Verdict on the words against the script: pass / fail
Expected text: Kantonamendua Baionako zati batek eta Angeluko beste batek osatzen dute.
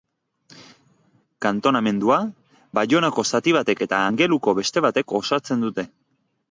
pass